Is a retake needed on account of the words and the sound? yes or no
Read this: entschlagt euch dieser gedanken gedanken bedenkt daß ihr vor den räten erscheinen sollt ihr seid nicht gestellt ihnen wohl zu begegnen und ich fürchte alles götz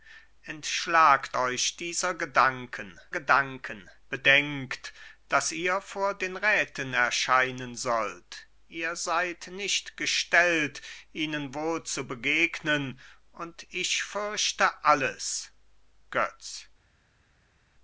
no